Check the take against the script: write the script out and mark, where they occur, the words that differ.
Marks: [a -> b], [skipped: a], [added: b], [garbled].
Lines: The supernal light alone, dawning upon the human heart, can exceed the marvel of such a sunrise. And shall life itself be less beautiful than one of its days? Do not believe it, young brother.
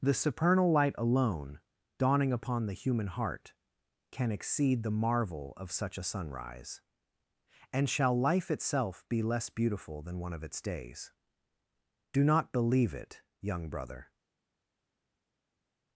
The supernal light alone, dawning upon the human heart, can exceed the marvel of such a sunrise. And shall life itself be less beautiful than one of its days? Do not believe it, young brother.